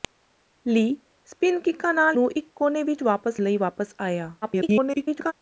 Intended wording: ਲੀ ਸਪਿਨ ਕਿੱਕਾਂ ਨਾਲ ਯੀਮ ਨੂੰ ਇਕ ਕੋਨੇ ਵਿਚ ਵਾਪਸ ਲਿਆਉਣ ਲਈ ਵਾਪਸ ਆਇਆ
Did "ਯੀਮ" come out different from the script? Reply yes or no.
yes